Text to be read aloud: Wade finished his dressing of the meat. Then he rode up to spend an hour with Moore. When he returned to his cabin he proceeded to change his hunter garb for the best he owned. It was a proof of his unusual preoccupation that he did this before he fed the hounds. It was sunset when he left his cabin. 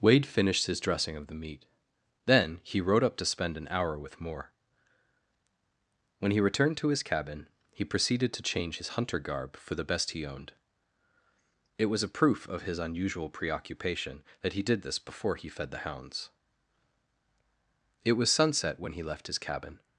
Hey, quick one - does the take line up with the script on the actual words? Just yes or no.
yes